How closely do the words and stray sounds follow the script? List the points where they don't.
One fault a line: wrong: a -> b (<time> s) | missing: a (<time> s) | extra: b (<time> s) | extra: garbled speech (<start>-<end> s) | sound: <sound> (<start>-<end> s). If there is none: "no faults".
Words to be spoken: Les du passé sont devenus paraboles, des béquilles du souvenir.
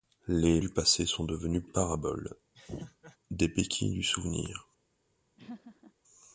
sound: laugh (2.5-3.2 s)
sound: laugh (5.4-5.9 s)